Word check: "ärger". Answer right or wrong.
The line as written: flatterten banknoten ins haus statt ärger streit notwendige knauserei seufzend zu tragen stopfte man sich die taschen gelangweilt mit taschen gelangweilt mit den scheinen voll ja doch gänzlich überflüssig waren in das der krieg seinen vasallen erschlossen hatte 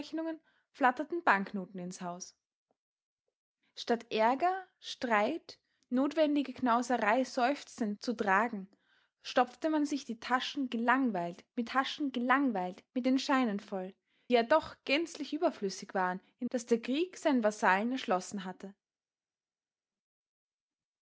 right